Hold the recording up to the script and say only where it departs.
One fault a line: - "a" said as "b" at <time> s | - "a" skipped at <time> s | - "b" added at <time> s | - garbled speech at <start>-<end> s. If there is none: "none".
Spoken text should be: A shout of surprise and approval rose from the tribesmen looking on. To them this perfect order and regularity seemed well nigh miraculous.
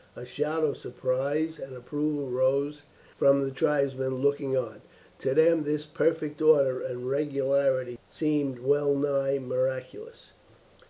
none